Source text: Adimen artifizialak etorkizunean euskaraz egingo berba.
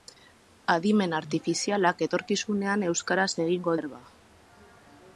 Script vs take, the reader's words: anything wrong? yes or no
no